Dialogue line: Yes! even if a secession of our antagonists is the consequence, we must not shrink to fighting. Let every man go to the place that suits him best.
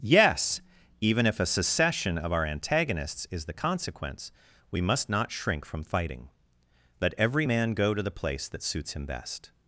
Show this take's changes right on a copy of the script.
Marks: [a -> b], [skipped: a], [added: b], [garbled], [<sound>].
Yes! even if a secession of our antagonists is the consequence, we must not shrink [to -> from] fighting. Let every man go to the place that suits him best.